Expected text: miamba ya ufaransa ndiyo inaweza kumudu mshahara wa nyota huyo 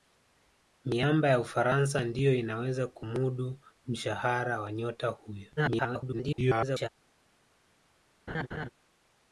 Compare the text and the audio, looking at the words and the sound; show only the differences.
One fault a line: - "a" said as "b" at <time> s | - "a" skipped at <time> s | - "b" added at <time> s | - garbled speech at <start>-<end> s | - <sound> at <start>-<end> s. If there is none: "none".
- garbled speech at 5.6-6.9 s
- laugh at 8.3-8.7 s